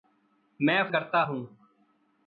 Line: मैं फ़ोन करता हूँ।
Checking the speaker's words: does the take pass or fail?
fail